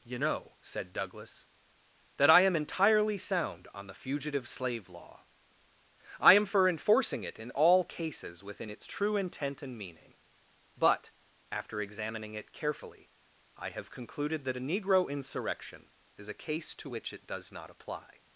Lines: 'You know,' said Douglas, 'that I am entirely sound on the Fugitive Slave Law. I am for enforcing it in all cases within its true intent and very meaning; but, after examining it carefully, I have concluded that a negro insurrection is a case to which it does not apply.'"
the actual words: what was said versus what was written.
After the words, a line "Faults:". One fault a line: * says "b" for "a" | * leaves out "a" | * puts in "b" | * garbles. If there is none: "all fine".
'You know,' said Douglas, 'that I am entirely sound on the Fugitive Slave Law. I am for enforcing it in all cases within its true intent and meaning; but, after examining it carefully, I have concluded that a negro insurrection is a case to which it does not apply.'"
Faults:
* leaves out "very"